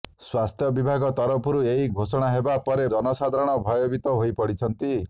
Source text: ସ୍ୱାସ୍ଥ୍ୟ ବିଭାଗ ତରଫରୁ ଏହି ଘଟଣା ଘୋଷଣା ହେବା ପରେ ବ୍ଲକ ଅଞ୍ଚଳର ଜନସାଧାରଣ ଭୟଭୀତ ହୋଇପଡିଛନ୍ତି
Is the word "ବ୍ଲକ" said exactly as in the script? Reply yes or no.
no